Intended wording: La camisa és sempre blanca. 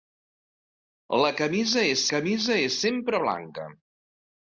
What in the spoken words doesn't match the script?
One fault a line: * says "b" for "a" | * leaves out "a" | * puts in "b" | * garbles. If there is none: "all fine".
* puts in "camisa és"